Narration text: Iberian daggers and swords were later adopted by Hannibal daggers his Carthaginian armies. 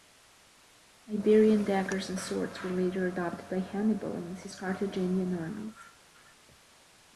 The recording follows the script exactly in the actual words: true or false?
false